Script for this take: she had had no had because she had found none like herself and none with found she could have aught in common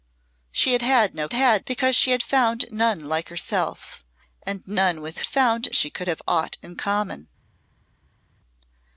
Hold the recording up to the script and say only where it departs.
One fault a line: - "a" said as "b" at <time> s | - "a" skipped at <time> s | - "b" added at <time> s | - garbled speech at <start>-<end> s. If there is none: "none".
none